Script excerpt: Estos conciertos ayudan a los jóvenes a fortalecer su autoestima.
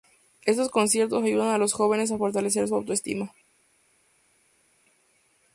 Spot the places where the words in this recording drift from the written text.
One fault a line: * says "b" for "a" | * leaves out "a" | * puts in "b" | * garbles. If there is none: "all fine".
all fine